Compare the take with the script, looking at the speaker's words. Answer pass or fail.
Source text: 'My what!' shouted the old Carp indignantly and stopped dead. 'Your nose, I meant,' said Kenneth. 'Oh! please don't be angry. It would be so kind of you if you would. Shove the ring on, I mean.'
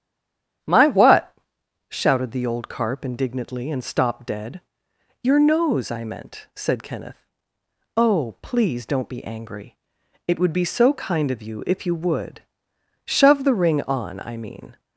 pass